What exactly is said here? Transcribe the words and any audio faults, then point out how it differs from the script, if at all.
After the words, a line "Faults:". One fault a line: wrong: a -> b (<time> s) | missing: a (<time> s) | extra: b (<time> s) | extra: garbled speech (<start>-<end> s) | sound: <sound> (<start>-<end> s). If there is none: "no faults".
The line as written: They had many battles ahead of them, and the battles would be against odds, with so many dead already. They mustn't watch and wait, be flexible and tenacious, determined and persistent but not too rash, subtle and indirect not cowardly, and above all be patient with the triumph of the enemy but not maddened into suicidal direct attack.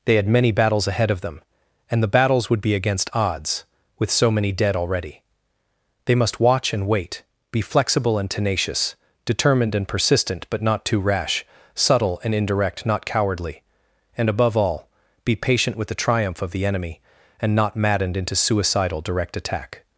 They had many battles ahead of them, and the battles would be against odds, with so many dead already. They must watch and wait, be flexible and tenacious, determined and persistent but not too rash, subtle and indirect not cowardly, and above all be patient with the triumph of the enemy and not maddened into suicidal direct attack.
Faults:
wrong: mustn't -> must (6.2 s)
wrong: but -> and (17.4 s)